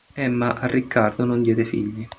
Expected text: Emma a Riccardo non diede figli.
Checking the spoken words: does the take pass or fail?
pass